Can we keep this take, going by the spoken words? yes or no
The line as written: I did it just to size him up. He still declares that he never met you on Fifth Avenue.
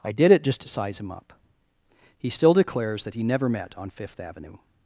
no